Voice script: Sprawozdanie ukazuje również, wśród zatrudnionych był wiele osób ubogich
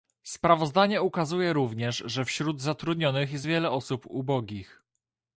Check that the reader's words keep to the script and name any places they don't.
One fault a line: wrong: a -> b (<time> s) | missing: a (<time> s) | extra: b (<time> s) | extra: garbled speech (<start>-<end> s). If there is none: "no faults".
extra: że (2.0 s)
wrong: był -> jest (3.3 s)